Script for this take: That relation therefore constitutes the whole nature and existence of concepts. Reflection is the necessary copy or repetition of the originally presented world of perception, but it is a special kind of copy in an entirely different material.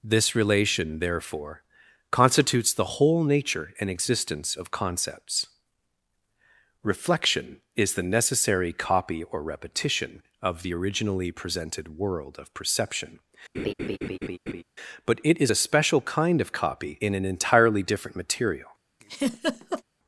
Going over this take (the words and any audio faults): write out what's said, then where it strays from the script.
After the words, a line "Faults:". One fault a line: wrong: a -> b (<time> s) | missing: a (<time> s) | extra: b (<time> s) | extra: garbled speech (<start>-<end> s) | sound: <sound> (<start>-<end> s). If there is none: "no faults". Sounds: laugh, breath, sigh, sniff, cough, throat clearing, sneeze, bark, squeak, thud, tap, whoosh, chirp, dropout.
This relation therefore constitutes the whole nature and existence of concepts. Reflection is the necessary copy or repetition of the originally presented world of perception, but it is a special kind of copy in an entirely different material.
Faults:
wrong: That -> This (0.0 s)
sound: laugh (13.5-14.6 s)
sound: laugh (19.0-19.8 s)